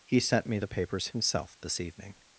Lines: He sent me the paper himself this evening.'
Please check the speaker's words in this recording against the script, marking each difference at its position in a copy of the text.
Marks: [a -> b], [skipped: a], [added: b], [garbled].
He sent me the [paper -> papers] himself this evening.'